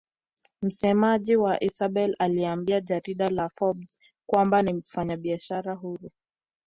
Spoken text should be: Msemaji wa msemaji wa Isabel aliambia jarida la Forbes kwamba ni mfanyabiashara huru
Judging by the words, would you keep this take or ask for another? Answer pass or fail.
fail